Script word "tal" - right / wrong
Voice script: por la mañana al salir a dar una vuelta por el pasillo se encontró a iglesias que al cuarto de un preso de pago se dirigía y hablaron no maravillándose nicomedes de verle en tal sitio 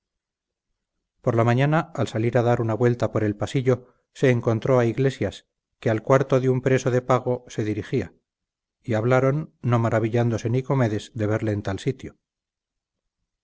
right